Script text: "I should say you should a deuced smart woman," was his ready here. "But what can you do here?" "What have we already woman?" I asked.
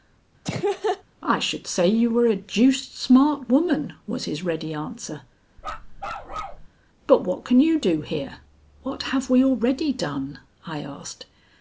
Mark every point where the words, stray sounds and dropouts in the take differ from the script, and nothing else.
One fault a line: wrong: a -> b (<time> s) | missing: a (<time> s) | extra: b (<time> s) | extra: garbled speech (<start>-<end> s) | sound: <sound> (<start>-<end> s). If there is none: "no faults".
sound: laugh (0.4-1.0 s)
wrong: should -> were (2.1 s)
wrong: here -> answer (4.7 s)
sound: bark (5.6-6.7 s)
wrong: woman -> done (9.9 s)